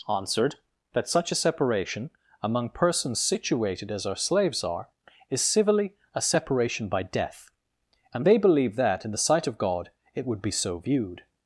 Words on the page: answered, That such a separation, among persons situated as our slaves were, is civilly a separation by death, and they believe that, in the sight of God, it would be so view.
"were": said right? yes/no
no